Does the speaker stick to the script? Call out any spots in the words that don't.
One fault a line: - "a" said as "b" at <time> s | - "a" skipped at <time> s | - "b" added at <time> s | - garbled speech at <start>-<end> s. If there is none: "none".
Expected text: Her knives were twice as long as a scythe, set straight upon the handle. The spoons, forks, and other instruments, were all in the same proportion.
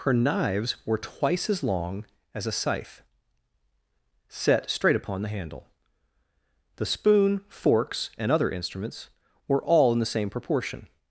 - "spoons" said as "spoon" at 6.9 s